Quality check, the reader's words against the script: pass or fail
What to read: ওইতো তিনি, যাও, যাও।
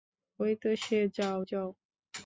fail